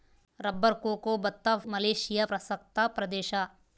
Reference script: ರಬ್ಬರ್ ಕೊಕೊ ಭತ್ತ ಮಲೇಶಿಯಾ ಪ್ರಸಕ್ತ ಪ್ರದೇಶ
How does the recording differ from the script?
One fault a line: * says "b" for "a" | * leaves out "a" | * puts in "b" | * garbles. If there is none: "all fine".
all fine